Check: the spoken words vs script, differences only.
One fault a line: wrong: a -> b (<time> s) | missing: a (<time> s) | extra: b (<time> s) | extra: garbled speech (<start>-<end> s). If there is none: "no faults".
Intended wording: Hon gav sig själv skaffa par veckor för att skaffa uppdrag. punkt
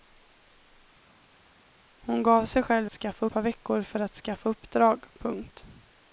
no faults